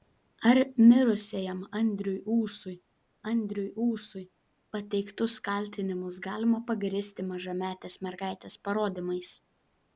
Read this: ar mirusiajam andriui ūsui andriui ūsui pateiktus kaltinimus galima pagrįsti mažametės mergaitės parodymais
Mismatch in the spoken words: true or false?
false